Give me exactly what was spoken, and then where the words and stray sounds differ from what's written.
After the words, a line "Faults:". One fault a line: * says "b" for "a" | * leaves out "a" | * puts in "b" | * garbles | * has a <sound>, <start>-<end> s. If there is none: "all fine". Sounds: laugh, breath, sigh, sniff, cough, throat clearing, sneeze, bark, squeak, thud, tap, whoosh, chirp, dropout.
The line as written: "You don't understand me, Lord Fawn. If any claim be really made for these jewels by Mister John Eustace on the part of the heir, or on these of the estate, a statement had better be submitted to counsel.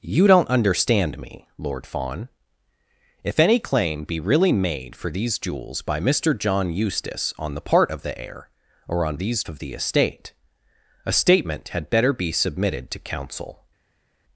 "You don't understand me, Lord Fawn. If any claim be really made for these jewels by Mister John Eustace on the part of the heir, or on these of the estate, a statement had better be submitted to counsel.
Faults:
all fine